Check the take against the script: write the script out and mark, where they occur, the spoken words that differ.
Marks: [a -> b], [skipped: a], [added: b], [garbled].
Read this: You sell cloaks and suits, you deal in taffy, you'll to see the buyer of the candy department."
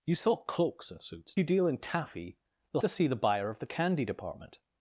You sell cloaks and suits, you deal in taffy, you'll to see the buyer of the candy department."